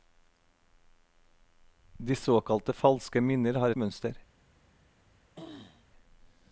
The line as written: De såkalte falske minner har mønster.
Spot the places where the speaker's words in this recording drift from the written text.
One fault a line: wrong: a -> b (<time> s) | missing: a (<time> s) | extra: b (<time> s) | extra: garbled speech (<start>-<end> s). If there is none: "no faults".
no faults